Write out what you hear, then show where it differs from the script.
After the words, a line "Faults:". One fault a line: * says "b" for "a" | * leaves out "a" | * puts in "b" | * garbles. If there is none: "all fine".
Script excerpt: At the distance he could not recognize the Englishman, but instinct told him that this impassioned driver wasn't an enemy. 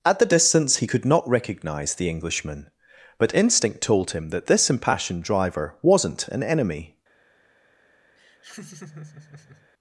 At the distance he could not recognize the Englishman, but instinct told him that this impassioned driver wasn't an enemy.
Faults:
all fine